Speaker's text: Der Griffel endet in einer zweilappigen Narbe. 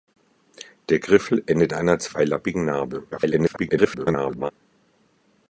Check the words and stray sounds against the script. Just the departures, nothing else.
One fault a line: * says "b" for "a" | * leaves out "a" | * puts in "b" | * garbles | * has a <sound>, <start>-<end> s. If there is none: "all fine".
* leaves out "in"
* garbles